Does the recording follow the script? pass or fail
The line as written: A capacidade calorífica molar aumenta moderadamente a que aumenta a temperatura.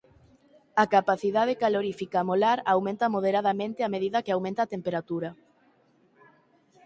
fail